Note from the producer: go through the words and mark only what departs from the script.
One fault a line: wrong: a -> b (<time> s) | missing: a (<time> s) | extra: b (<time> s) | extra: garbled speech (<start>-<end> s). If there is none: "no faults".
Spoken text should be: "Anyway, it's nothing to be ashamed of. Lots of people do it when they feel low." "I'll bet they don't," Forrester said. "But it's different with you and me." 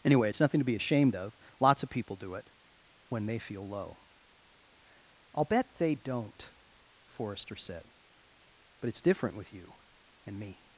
no faults